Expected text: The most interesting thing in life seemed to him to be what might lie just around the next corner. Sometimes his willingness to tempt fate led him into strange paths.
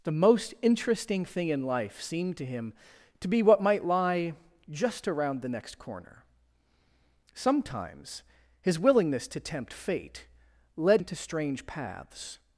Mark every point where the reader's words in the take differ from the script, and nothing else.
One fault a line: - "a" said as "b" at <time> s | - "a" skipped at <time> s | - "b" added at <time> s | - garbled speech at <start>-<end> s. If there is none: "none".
- "him" skipped at 11.0 s